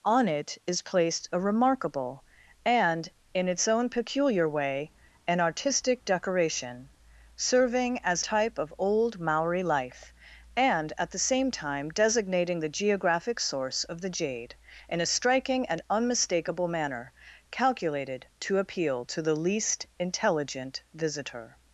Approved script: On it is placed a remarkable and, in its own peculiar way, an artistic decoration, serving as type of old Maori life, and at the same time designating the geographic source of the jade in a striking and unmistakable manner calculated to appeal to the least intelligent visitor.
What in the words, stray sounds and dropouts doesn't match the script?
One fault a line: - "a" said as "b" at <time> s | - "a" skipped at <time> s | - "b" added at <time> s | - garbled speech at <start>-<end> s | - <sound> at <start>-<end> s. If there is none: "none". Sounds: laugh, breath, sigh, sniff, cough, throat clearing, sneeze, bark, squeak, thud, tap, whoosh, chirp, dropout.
none